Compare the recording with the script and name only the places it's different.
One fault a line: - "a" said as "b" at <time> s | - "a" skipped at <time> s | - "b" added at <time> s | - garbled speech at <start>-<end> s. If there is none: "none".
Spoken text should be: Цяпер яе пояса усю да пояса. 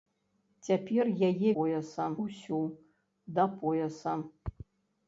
none